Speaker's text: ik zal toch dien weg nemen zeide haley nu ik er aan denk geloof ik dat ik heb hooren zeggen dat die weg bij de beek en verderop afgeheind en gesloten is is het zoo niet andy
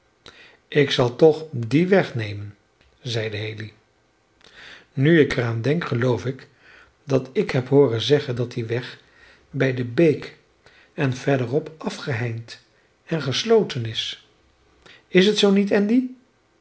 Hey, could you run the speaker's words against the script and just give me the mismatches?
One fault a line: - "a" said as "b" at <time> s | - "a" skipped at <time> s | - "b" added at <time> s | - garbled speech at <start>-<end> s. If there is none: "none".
none